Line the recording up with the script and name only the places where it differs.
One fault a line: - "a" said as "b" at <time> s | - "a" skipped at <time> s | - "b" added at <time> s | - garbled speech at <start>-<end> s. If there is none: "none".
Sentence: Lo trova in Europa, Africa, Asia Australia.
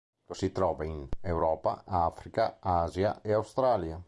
- "si" added at 0.3 s
- "e" added at 3.2 s